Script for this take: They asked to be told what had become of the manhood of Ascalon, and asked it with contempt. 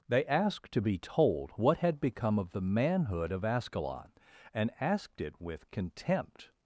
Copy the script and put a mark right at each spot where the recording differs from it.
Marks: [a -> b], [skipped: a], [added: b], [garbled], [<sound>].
They asked to be told what had become of the manhood of Ascalon, and asked it with contempt.